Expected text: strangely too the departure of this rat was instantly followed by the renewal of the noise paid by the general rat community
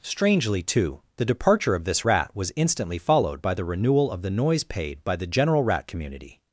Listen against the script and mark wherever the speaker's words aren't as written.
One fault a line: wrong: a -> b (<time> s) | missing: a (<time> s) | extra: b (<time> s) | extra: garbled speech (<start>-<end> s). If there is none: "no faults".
no faults